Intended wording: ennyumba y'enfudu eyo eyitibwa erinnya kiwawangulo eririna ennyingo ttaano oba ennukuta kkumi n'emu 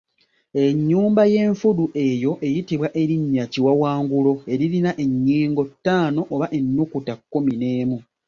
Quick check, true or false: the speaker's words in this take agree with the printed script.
true